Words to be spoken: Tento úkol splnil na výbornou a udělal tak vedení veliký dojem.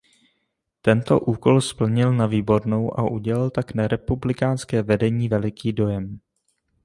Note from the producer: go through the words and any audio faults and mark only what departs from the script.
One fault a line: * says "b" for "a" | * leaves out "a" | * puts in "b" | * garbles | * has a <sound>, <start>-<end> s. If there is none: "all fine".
* puts in "na republikánské"